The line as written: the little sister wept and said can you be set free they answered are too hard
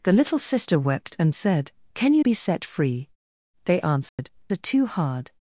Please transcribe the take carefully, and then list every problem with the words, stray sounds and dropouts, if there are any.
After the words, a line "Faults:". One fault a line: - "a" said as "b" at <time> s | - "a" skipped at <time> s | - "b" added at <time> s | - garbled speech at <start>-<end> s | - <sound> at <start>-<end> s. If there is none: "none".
the little sister wept and said can you be set free they answered are too hard
Faults:
- dropout at 4.1-4.2 s